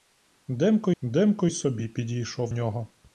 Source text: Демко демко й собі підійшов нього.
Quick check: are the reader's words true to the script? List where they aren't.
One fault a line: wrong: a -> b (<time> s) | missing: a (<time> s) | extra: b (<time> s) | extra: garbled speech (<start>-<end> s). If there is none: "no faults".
no faults